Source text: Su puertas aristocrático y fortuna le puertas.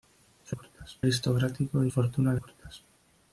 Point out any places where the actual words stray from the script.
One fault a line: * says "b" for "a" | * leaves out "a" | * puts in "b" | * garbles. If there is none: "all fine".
all fine